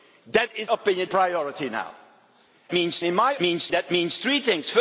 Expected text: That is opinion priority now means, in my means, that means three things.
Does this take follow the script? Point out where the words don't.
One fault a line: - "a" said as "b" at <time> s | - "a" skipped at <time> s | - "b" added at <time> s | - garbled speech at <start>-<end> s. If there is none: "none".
none